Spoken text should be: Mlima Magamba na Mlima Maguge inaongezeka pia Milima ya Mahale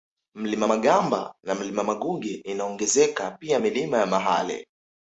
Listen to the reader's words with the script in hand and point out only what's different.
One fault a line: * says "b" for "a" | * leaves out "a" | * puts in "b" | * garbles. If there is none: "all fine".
all fine